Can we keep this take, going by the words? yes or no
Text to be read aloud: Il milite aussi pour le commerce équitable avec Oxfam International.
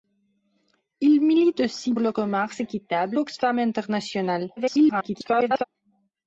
no